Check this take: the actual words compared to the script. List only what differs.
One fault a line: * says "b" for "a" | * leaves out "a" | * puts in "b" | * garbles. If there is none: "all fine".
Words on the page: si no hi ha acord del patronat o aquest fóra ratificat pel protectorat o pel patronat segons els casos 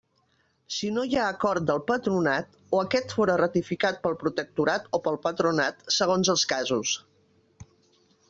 all fine